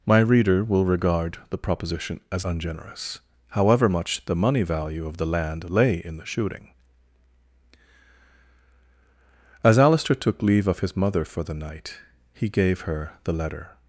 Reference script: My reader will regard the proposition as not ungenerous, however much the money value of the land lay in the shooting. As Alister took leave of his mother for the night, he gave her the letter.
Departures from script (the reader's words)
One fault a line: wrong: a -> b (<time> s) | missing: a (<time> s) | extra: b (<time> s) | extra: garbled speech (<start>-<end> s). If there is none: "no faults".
missing: not (2.5 s)